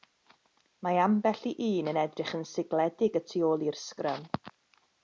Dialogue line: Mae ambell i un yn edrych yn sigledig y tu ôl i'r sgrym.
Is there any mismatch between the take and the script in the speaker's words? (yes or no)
no